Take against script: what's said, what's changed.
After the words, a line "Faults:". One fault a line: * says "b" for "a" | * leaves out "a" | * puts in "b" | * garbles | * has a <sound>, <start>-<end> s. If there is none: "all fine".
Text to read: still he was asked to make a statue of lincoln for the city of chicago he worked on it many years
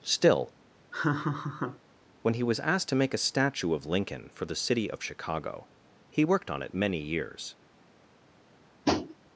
still when he was asked to make a statue of lincoln for the city of chicago he worked on it many years
Faults:
* has a laugh, 0.9-1.8 s
* puts in "when"
* has a tap, 8.9-9.2 s